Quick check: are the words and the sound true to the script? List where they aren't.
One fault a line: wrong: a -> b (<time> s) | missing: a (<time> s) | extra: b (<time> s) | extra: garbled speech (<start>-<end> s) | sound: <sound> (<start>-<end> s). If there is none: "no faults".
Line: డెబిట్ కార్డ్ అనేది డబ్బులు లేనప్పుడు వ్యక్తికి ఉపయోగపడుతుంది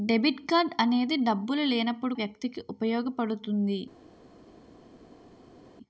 no faults